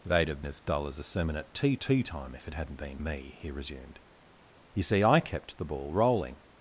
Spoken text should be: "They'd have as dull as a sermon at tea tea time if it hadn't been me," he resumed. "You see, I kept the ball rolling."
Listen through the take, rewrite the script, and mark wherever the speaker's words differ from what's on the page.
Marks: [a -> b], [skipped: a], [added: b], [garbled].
"They'd have as dull as a sermon at tea tea time if it hadn't been me," he resumed. "You see, I kept the ball rolling."